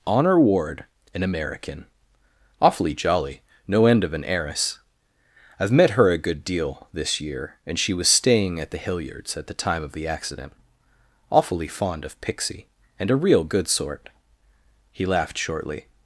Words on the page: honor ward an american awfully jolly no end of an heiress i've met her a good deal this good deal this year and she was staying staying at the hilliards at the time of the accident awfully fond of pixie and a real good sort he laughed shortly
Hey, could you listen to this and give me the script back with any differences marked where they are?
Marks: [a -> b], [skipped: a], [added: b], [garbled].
honor ward an american awfully jolly no end of an heiress i've met her a good deal this [skipped: good deal this] year and she was staying [skipped: staying] at the hilliards at the time of the accident awfully fond of pixie and a real good sort he laughed shortly